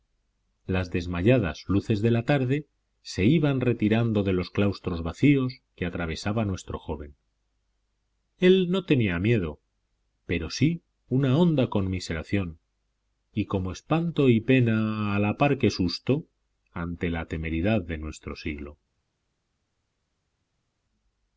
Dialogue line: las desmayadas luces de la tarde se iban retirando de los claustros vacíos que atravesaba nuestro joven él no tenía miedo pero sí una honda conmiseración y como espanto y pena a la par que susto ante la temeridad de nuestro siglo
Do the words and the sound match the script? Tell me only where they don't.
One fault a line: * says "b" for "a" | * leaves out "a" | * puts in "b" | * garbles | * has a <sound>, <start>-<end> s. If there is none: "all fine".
all fine